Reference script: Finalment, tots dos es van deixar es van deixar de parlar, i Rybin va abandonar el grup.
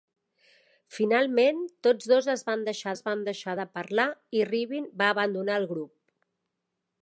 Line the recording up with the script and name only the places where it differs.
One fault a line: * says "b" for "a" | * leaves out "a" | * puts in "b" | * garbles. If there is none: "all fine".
all fine